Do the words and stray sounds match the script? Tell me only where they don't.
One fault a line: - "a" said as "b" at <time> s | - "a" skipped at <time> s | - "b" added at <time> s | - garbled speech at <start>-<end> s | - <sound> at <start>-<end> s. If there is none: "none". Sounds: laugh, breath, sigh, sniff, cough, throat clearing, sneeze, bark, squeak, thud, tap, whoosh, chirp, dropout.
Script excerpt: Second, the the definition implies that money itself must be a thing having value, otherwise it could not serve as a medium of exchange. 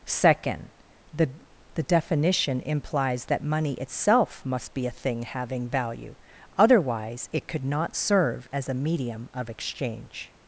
none